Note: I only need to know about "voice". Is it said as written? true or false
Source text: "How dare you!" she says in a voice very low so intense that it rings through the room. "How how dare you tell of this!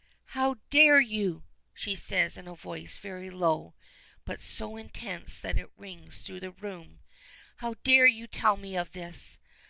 true